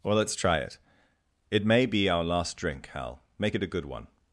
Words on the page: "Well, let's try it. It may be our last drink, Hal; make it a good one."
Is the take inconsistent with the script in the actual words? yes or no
no